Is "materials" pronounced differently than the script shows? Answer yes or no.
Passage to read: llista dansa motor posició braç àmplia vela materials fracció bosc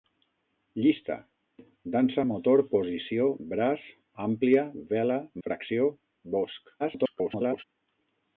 yes